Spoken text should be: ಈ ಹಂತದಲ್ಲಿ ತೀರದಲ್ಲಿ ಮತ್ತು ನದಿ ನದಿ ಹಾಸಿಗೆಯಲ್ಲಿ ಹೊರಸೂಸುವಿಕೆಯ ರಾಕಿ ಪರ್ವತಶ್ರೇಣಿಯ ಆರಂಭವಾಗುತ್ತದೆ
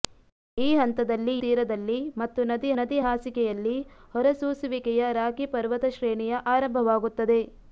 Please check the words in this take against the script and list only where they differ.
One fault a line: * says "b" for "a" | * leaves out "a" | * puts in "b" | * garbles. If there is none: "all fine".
all fine